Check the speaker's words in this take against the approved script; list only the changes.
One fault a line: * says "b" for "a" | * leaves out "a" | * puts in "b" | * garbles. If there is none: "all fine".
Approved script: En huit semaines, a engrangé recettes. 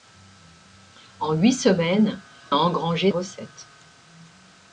all fine